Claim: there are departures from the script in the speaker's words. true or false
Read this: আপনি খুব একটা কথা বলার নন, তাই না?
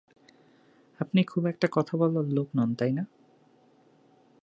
true